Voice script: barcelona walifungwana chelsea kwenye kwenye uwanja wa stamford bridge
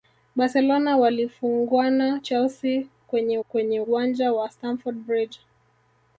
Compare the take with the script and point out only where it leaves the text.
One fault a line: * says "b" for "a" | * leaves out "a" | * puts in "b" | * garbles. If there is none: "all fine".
all fine